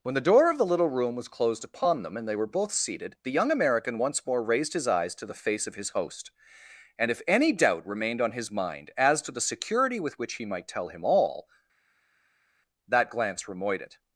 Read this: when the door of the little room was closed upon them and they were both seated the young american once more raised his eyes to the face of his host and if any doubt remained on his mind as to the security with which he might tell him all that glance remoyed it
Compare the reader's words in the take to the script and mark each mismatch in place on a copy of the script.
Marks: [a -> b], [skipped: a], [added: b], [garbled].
when the door of the little room was closed upon them and they were both seated the young american once more raised his eyes to the face of his host and if any doubt remained on his mind as to the security with which he might tell him all that glance remoyed it